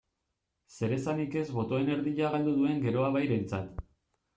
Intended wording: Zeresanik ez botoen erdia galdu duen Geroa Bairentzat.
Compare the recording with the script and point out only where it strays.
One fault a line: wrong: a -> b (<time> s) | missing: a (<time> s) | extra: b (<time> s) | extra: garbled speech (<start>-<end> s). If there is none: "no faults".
no faults